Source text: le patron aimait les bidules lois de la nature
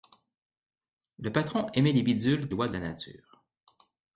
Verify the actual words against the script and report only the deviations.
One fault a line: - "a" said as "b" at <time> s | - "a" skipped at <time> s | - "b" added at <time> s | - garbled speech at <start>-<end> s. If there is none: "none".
none